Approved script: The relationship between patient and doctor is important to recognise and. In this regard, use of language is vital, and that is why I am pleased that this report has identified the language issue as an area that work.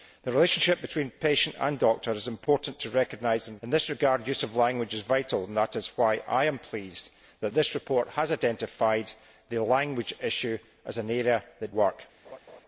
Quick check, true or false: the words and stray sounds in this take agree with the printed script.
false